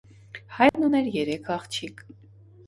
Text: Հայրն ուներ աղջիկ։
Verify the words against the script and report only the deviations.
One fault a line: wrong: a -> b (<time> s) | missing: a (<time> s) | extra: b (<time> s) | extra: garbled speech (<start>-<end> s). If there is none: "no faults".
extra: երեք (1.2 s)